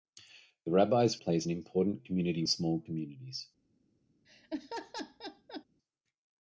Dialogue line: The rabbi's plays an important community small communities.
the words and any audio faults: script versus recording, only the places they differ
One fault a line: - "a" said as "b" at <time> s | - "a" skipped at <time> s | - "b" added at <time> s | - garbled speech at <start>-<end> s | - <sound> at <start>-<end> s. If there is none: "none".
- laugh at 4.2-5.6 s